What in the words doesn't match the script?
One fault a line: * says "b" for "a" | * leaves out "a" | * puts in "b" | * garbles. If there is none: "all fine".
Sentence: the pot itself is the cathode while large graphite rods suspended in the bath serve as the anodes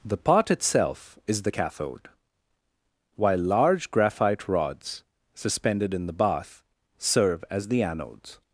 all fine